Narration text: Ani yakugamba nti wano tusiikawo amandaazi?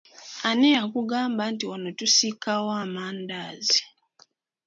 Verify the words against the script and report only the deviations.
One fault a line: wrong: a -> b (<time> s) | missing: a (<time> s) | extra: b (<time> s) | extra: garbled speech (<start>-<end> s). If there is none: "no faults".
no faults